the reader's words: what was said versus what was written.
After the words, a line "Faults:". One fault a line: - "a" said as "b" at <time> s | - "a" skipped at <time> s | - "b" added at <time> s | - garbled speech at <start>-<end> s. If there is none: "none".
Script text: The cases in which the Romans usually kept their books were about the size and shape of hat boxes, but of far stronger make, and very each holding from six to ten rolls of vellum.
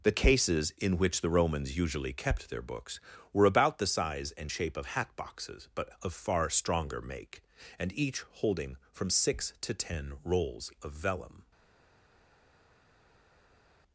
The cases in which the Romans usually kept their books were about the size and shape of hat boxes, but of far stronger make, and each holding from six to ten rolls of vellum.
Faults:
- "very" skipped at 7.9 s